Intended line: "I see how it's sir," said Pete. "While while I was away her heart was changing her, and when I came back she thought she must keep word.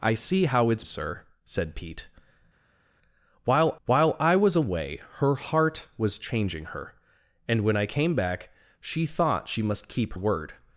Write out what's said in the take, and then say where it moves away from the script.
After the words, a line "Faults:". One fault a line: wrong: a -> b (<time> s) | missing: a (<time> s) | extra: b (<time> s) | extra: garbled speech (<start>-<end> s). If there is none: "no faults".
"I see how it's sir," said Pete. "While while I was away her heart was changing her, and when I came back she thought she must keep word.
Faults:
no faults